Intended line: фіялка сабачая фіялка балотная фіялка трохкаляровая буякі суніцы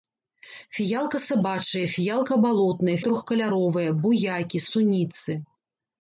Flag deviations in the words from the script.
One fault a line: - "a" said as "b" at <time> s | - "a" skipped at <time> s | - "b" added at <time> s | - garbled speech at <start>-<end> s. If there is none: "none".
- "фіялка" skipped at 3.0 s